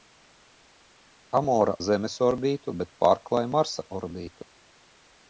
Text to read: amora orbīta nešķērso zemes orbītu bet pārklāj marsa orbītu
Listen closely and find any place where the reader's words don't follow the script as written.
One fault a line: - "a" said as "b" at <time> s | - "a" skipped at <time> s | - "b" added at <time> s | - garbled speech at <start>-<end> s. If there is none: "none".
- "orbīta nešķērso" skipped at 1.8 s